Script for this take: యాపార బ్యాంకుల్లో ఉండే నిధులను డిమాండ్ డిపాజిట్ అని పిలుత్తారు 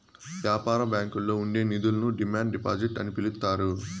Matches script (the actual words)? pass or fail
pass